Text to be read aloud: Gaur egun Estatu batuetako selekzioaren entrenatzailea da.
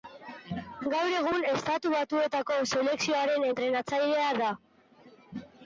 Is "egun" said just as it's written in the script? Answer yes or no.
yes